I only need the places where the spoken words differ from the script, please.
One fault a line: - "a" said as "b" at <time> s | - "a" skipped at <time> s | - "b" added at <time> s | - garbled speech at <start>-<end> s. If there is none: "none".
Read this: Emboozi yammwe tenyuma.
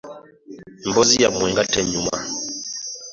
- "nga" added at 1.5 s